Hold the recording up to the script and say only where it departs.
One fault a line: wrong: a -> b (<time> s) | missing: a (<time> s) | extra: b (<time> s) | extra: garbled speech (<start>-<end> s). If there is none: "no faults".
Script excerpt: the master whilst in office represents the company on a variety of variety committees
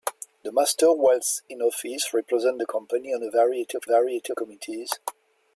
no faults